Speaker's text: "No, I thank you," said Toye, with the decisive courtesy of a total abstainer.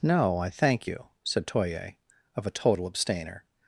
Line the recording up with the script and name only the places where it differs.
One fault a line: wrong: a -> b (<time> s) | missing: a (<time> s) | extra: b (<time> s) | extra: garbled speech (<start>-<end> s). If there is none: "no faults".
missing: with the decisive courtesy (2.0 s)